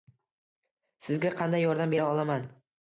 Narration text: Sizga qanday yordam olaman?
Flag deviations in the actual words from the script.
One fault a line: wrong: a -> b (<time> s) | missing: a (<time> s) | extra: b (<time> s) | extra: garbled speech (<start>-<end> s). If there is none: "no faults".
extra: bera (1.9 s)